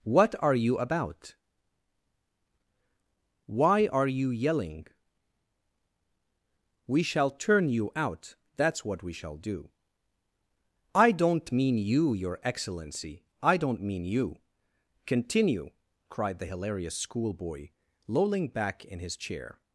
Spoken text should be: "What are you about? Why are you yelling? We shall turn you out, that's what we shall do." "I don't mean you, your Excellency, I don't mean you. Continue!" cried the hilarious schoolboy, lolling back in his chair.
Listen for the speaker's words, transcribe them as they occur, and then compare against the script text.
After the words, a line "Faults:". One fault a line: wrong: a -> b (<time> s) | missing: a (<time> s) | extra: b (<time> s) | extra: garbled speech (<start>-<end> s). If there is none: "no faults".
"What are you about? Why are you yelling? We shall turn you out, that's what we shall do." "I don't mean you, your Excellency, I don't mean you. Continue!" cried the hilarious schoolboy, lolling back in his chair.
Faults:
no faults